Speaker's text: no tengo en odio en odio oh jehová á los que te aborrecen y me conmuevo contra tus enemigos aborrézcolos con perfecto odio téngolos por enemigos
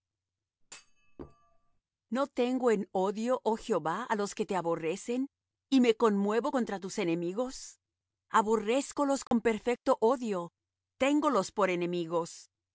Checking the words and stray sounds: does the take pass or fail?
fail